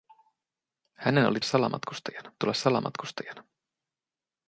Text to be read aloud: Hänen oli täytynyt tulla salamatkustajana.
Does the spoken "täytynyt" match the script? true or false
false